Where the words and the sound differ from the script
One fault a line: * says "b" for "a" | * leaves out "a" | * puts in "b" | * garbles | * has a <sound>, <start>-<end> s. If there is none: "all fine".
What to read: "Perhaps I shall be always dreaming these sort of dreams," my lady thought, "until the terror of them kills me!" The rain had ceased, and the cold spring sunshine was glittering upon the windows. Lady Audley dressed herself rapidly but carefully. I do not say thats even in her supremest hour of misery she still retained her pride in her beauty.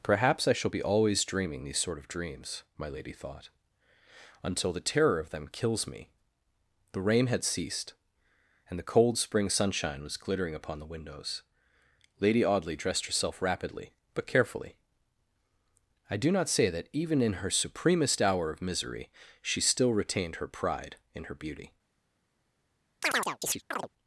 * says "that" for "thats"
* has a chirp, 23.0-23.9 s